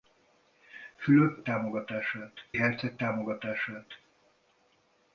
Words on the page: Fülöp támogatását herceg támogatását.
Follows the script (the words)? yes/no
yes